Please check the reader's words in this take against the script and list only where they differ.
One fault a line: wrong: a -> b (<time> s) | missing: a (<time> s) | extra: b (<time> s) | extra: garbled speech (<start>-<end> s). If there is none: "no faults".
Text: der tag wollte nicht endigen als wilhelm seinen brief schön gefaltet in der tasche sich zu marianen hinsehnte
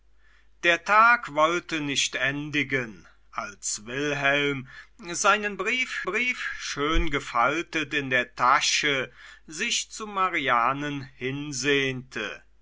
extra: brief (6.0 s)